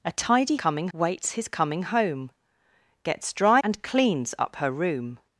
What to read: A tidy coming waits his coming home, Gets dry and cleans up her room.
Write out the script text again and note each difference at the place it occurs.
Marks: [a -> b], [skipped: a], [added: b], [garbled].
A tidy coming waits his coming home, Gets dry and cleans up her room.